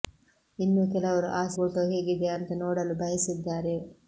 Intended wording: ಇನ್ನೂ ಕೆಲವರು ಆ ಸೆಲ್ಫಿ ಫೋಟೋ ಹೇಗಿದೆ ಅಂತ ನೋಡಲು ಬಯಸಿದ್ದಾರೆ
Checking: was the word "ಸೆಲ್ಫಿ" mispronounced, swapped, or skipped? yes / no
yes